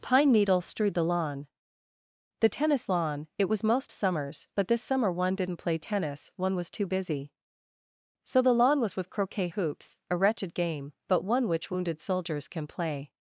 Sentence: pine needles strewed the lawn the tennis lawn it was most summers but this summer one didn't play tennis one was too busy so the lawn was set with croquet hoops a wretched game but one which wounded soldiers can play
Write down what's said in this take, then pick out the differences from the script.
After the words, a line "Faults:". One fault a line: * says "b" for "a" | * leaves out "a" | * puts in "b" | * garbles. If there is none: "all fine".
pine needles strewed the lawn the tennis lawn it was most summers but this summer one didn't play tennis one was too busy so the lawn was with croquet hoops a wretched game but one which wounded soldiers can play
Faults:
* leaves out "set"